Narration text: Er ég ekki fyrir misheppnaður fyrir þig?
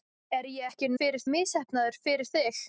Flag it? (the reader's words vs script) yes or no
no